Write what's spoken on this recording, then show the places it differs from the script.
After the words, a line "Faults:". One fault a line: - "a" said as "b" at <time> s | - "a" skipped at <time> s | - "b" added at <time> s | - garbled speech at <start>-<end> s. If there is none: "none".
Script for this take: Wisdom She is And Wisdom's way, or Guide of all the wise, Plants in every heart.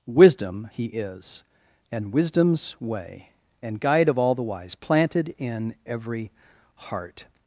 Wisdom He is And Wisdom's way, and Guide of all the wise, Planted in every heart.
Faults:
- "She" said as "He" at 0.7 s
- "or" said as "and" at 3.6 s
- "Plants" said as "Planted" at 4.7 s